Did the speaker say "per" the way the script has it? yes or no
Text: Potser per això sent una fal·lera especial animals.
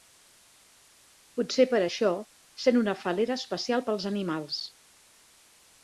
yes